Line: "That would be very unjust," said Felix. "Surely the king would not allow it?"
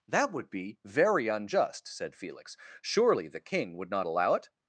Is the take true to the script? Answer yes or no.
yes